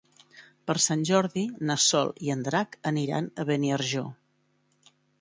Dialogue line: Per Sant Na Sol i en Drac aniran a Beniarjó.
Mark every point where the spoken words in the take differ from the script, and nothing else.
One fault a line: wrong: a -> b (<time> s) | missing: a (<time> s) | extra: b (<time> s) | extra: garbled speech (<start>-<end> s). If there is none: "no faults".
extra: Jordi (1.1 s)